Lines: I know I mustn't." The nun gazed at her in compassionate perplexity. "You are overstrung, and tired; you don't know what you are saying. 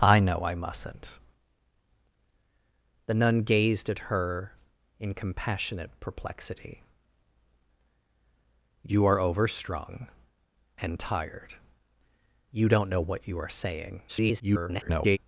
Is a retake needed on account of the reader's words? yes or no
yes